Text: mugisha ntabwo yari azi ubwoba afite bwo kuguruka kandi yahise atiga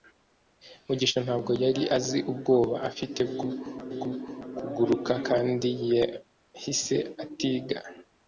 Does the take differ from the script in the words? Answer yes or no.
yes